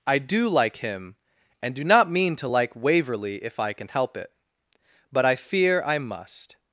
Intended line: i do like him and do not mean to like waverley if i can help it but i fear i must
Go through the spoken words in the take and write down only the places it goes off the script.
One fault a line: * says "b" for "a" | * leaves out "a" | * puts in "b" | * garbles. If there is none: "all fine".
all fine